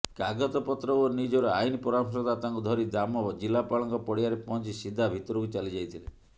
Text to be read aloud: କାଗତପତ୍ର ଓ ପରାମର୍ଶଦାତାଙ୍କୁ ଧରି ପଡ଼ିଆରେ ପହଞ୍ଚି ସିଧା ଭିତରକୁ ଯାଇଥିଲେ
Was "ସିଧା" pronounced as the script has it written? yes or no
yes